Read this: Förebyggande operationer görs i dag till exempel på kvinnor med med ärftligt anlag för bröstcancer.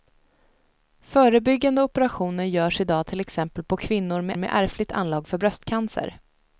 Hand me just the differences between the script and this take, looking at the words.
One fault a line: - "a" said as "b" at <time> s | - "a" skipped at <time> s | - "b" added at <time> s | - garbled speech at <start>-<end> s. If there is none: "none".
none